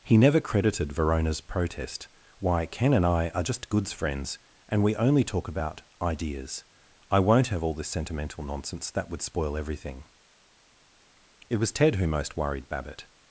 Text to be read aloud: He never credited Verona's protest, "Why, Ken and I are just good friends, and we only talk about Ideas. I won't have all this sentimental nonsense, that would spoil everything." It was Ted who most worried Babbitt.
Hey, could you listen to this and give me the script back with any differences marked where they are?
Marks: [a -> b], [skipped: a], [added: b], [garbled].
He never credited Verona's protest, "Why, Ken and I are just [good -> goods] friends, and we only talk about Ideas. I won't have all this sentimental nonsense, that would spoil everything." It was Ted who most worried Babbitt.